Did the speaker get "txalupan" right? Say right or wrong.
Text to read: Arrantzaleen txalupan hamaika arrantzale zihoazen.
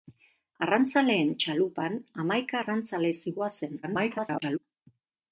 right